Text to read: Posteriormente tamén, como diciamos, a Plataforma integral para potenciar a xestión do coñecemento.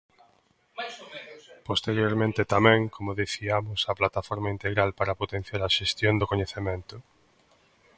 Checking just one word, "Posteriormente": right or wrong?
right